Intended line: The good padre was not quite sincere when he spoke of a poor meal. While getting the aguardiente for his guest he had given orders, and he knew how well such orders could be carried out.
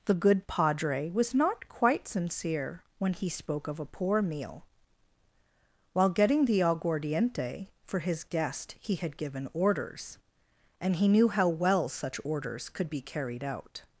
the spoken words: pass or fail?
pass